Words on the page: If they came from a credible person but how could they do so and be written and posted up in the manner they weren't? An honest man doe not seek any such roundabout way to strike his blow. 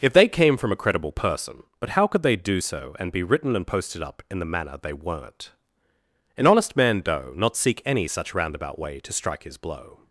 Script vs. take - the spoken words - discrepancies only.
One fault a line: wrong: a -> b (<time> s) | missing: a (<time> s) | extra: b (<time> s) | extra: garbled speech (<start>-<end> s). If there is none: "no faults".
no faults